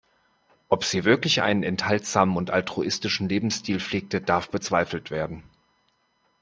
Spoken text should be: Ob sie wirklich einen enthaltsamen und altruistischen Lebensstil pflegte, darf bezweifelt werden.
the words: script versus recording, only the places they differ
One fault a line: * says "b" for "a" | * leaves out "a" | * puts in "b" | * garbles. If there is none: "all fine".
all fine